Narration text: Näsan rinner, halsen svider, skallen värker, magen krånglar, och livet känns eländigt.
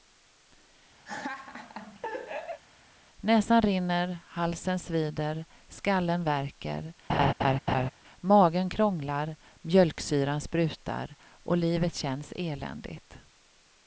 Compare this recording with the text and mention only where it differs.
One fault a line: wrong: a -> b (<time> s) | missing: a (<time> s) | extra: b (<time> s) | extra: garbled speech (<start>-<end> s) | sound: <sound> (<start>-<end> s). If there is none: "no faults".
sound: laugh (1.1-2.6 s)
sound: laugh (7.1-7.9 s)
extra: mjölksyran sprutar (9.6 s)